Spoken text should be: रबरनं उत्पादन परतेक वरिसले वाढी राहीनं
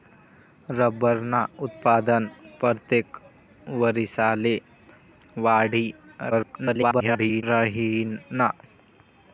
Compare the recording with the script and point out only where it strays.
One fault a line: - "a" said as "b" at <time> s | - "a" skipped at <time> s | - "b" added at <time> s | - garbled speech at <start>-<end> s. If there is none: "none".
- garbled speech at 6.3-7.4 s